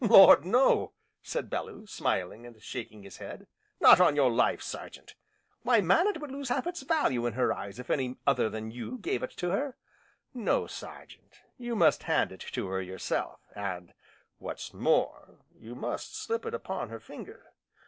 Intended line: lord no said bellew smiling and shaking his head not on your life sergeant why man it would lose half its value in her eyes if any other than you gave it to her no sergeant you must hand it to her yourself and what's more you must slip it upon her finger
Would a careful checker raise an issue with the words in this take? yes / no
no